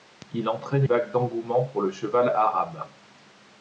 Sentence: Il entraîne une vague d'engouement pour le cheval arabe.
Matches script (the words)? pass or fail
fail